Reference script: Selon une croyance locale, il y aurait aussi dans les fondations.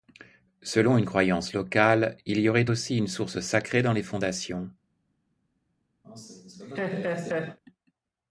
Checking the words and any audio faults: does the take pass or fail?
fail